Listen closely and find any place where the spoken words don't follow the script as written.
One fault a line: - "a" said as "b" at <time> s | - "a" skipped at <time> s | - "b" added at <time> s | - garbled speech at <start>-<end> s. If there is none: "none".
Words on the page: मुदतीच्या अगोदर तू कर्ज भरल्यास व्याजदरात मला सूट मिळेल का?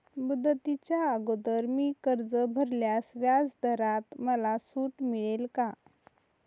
- "तू" said as "मी" at 1.7 s